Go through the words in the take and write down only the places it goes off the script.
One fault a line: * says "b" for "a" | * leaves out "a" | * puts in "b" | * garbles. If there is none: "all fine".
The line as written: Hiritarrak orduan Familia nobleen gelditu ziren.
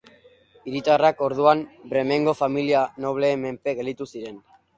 * puts in "Bremengo"
* puts in "menpe"